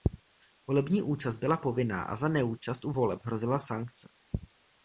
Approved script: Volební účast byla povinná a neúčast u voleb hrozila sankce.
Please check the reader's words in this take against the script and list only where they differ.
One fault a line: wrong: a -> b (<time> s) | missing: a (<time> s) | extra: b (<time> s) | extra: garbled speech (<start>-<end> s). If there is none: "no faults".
extra: za (2.1 s)